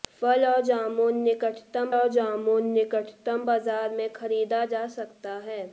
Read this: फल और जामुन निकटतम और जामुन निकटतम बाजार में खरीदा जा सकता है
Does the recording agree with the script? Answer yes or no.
yes